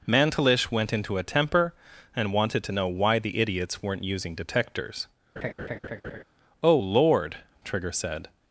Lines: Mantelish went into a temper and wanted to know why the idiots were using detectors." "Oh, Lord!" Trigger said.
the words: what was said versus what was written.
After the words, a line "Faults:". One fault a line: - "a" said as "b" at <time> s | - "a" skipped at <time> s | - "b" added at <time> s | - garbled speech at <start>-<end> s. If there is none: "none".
Mantelish went into a temper and wanted to know why the idiots weren't using detectors." "Oh, Lord!" Trigger said.
Faults:
- "were" said as "weren't" at 3.8 s